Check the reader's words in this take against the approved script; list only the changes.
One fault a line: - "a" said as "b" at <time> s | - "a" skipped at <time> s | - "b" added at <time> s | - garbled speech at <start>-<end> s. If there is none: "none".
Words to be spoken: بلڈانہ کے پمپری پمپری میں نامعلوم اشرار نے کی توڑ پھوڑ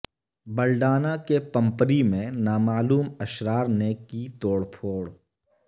- "پمپری" skipped at 2.0 s